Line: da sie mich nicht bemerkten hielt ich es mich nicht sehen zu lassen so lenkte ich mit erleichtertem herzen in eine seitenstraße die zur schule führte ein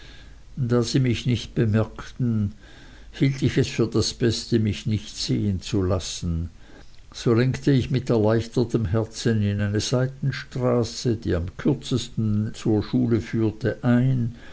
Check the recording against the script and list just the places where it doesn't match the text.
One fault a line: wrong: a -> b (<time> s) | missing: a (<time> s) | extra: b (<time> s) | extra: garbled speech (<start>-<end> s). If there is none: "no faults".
extra: für das beste (3.7 s)
extra: am kürzesten (11.4 s)